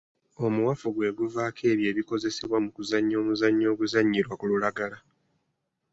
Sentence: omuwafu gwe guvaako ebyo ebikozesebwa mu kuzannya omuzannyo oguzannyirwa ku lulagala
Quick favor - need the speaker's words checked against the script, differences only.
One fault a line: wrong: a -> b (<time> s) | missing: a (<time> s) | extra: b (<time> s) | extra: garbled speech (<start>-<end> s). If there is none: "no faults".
no faults